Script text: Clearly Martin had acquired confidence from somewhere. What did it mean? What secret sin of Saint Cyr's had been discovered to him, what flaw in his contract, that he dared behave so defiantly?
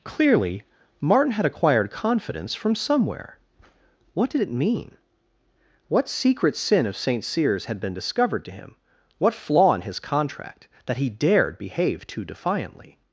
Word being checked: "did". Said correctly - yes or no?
yes